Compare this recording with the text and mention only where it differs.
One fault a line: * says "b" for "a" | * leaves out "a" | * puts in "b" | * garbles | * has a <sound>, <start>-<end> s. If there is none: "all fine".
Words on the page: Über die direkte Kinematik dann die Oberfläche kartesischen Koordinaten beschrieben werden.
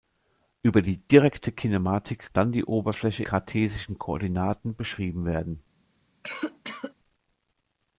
* has a cough, 6.2-6.9 s